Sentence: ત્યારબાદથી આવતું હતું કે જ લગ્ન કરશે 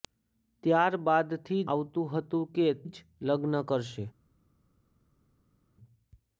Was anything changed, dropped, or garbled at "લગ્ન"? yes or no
no